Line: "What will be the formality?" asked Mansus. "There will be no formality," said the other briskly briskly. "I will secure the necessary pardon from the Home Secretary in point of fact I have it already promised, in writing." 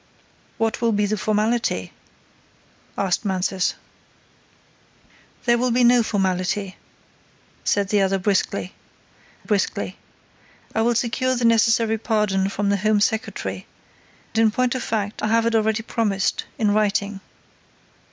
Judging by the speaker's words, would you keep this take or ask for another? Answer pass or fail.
pass